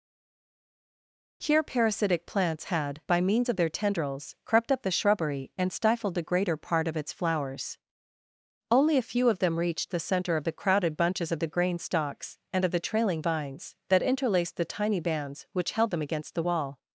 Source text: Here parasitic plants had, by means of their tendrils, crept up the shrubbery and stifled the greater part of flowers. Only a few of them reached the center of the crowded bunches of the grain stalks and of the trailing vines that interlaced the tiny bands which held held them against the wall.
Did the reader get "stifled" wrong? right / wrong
right